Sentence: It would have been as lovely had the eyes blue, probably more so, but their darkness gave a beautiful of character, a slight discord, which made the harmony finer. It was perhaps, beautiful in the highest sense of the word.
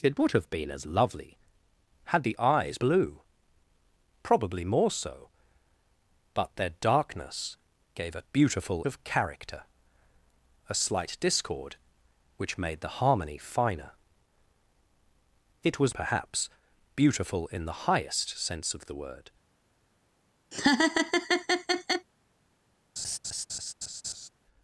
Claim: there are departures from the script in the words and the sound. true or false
true